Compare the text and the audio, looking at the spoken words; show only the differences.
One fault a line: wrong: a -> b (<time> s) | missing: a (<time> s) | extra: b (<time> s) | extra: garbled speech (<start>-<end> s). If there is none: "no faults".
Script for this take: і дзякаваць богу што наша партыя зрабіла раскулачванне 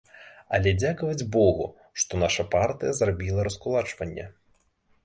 wrong: і -> але (0.6 s)